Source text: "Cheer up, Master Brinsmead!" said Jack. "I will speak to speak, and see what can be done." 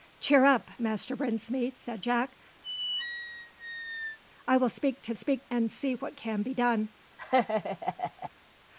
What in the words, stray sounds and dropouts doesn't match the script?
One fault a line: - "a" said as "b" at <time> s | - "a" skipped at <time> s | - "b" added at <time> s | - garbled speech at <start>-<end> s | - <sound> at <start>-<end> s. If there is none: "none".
- squeak at 2.6-4.2 s
- laugh at 7.2-8.3 s